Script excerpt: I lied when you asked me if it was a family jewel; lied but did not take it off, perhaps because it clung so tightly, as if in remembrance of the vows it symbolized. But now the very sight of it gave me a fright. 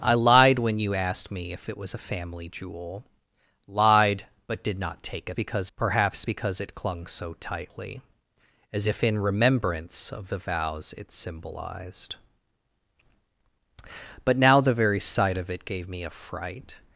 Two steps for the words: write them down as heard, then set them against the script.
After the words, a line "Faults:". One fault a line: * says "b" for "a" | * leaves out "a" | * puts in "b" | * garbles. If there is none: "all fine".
I lied when you asked me if it was a family jewel; lied but did not take it because, perhaps because it clung so tightly, as if in remembrance of the vows it symbolized. But now the very sight of it gave me a fright.
Faults:
* says "because" for "off"